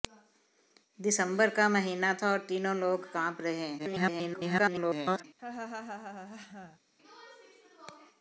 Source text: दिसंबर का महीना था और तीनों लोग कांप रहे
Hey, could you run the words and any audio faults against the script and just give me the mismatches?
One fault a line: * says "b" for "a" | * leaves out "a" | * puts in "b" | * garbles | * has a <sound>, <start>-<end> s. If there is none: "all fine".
* garbles
* has a laugh, 5.4-6.8 s